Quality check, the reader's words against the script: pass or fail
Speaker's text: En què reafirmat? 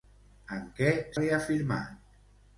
pass